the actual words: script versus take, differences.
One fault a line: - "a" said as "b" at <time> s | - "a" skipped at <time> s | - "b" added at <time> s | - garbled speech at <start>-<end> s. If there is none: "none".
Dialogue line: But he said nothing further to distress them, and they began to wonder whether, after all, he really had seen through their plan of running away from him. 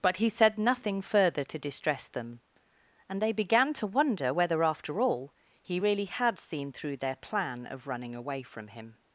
none